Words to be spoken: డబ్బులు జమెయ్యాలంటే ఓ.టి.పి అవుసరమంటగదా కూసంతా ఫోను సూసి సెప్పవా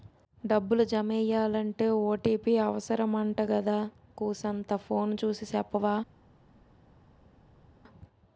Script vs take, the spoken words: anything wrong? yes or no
no